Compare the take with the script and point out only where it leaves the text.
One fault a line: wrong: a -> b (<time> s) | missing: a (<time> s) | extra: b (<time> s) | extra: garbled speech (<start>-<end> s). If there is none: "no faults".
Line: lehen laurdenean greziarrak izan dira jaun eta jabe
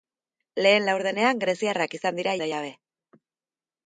missing: jaun (2.4 s)